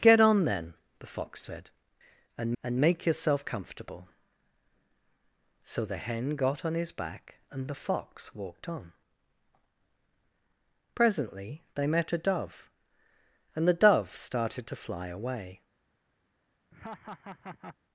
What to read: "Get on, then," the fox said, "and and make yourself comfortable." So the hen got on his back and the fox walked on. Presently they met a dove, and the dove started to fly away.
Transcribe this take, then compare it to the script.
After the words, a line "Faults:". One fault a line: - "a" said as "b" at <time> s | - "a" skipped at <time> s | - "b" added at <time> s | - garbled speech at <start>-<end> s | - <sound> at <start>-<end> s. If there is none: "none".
"Get on, then," the fox said, "and and make yourself comfortable." So the hen got on his back and the fox walked on. Presently they met a dove, and the dove started to fly away.
Faults:
- laugh at 16.7-17.8 s